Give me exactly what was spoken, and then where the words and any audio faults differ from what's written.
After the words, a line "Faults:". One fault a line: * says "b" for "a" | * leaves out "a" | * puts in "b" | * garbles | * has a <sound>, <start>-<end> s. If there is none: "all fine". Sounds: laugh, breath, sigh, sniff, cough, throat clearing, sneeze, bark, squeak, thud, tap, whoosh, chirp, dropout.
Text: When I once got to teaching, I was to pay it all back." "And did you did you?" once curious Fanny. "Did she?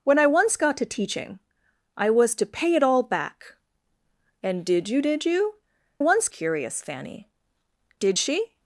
When I once got to teaching, I was to pay it all back." "And did you did you?" once curious Fanny. "Did she?
Faults:
all fine